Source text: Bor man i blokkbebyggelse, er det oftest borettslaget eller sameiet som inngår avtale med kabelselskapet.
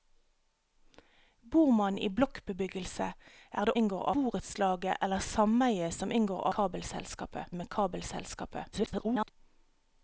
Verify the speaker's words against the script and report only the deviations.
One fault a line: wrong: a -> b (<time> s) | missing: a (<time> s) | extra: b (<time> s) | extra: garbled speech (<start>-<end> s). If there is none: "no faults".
wrong: oftest -> inngår (3.8 s)
wrong: avtale -> kabelselskapet (6.6 s)
extra: garbled speech (8.7-9.3 s)